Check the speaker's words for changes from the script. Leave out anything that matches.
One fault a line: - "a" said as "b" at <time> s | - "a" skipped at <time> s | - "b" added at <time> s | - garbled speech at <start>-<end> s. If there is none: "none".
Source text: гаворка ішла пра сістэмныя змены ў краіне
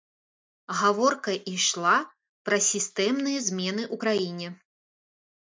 none